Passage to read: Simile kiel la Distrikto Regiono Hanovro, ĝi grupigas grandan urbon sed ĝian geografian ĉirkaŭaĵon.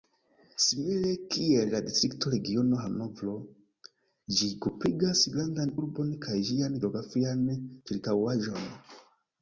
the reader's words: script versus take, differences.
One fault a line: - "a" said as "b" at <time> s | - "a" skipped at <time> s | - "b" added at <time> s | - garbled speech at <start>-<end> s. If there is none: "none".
- "sed" said as "kaj" at 6.3 s